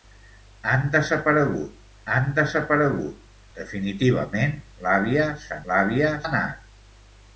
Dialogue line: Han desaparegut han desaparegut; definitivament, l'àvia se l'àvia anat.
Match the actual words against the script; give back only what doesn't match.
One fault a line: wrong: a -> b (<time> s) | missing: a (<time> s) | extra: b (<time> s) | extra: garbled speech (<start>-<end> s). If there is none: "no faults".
no faults